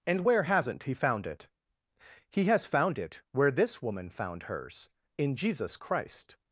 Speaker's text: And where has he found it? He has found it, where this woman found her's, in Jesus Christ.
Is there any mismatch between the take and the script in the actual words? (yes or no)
yes